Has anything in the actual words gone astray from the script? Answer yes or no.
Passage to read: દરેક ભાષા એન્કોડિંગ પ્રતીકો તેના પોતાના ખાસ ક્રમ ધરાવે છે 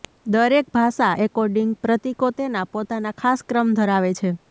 no